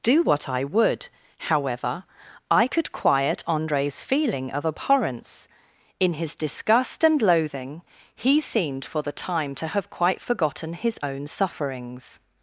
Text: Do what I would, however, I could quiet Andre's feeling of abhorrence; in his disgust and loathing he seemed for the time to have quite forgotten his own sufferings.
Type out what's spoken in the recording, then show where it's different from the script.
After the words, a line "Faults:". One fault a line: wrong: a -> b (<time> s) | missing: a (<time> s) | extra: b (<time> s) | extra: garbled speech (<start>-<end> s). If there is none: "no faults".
Do what I would, however, I could quiet Andre's feeling of abhorrence; in his disgust and loathing he seemed for the time to have quite forgotten his own sufferings.
Faults:
no faults